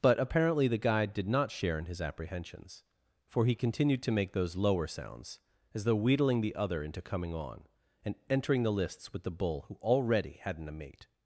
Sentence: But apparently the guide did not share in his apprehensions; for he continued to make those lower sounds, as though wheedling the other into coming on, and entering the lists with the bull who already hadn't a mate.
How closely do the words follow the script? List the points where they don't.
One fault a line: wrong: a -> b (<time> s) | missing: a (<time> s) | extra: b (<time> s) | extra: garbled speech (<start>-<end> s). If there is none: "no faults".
no faults